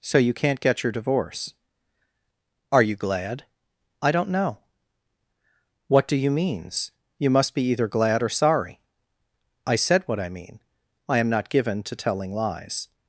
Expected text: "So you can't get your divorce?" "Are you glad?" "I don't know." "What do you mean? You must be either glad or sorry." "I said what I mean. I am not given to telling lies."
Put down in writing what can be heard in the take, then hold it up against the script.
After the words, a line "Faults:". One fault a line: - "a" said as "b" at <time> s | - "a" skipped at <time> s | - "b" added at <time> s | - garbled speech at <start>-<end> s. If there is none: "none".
"So you can't get your divorce?" "Are you glad?" "I don't know." "What do you means? You must be either glad or sorry." "I said what I mean. I am not given to telling lies."
Faults:
- "mean" said as "means" at 6.3 s